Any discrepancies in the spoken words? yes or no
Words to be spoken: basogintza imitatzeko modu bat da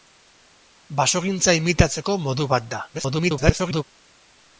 yes